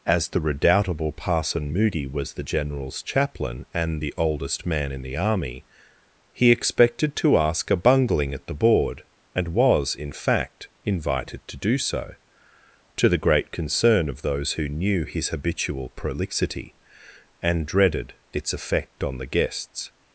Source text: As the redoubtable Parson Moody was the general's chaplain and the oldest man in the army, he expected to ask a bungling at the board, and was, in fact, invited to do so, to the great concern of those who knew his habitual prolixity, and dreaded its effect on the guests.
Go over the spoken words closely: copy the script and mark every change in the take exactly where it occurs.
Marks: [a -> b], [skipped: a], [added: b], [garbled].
As the redoubtable Parson Moody was the general's chaplain and the oldest man in the army, he expected to ask a bungling at the board, and was, in fact, invited to do so, to the great concern of those who knew his habitual prolixity, and dreaded its effect on the guests.